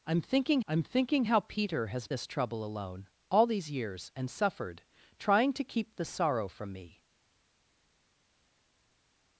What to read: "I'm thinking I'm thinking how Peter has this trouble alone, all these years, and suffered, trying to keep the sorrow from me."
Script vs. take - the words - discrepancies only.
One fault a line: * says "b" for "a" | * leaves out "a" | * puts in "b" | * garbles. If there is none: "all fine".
all fine